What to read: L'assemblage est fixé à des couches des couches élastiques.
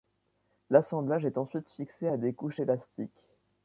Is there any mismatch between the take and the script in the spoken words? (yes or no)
yes